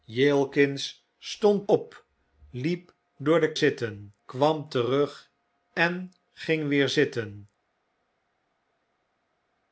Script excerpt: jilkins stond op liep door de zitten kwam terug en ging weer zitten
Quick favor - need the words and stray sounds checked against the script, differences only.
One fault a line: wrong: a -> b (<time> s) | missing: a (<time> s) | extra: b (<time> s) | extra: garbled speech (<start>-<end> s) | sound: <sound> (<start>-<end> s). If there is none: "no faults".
no faults